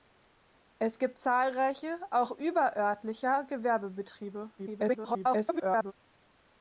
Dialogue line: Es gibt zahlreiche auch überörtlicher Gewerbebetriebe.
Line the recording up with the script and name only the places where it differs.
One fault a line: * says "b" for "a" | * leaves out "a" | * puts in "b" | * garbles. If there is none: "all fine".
* garbles